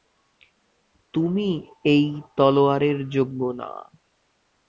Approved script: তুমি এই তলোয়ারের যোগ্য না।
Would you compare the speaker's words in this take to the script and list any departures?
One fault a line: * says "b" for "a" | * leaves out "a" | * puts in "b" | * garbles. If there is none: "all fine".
all fine